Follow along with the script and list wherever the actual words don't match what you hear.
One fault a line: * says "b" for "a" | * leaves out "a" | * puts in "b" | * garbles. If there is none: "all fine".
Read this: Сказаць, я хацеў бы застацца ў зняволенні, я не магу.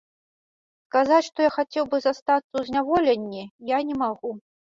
* puts in "што"